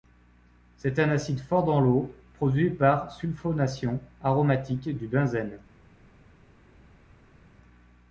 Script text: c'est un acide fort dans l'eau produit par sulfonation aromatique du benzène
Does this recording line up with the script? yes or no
yes